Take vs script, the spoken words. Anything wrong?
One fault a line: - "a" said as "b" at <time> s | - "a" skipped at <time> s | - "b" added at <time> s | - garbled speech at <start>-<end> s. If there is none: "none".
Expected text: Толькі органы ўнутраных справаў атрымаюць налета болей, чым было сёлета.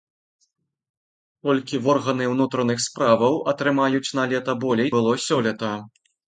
- "чым" skipped at 4.9 s